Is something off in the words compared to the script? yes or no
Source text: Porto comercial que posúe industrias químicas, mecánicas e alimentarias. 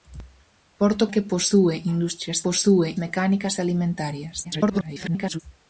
yes